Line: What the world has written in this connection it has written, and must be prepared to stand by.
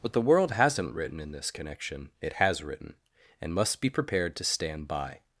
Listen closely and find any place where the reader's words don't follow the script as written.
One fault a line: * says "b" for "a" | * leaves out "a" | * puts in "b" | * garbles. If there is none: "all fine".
* says "hasn't" for "has"